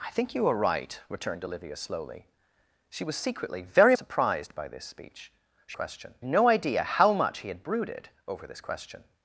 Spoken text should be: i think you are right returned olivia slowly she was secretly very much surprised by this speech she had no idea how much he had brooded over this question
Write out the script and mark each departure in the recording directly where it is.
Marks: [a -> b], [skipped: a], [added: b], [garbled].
i think you are right returned olivia slowly she was secretly very [skipped: much] surprised by this speech she [had -> question] no idea how much he had brooded over this question